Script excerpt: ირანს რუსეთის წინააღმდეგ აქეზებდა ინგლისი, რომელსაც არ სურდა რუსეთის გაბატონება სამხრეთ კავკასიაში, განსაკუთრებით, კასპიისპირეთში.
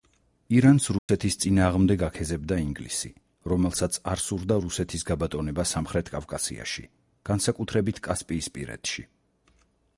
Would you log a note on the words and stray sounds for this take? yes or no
yes